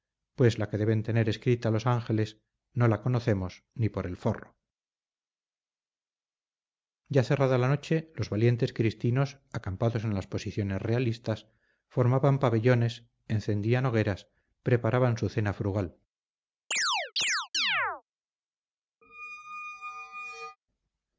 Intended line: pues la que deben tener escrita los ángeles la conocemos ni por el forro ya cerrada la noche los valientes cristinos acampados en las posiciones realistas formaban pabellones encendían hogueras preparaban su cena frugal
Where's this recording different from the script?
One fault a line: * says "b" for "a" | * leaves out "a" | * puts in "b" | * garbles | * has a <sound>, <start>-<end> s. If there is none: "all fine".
* puts in "no"
* has a chirp, 16.7-18.0 s
* has a squeak, 19.0-20.6 s